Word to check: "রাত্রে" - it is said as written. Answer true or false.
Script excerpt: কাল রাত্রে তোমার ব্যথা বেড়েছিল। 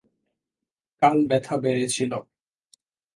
false